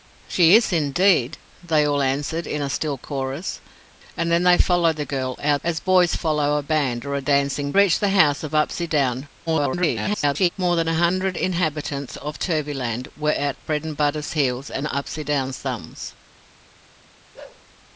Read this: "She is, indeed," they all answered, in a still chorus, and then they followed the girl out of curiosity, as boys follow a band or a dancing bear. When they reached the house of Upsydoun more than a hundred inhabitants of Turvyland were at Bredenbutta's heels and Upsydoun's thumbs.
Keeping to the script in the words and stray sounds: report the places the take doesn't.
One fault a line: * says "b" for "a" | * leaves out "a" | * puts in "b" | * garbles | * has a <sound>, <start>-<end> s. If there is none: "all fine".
* leaves out "of curiosity"
* leaves out "bear When they"
* garbles
* has a bark, 17.3-17.6 s